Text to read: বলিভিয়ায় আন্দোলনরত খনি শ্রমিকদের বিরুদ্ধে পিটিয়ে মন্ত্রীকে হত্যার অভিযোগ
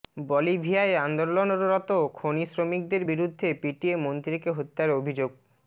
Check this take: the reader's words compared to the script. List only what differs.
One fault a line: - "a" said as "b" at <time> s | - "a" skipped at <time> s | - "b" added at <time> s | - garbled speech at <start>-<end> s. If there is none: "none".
none